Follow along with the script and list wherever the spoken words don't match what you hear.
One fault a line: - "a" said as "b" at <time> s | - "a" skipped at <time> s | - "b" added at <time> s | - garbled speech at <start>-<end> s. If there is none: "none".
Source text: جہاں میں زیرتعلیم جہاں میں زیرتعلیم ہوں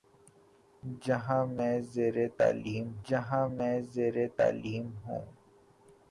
none